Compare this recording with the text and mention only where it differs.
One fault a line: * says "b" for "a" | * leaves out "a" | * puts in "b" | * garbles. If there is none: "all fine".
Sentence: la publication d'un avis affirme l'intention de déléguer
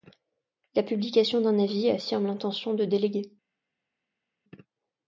all fine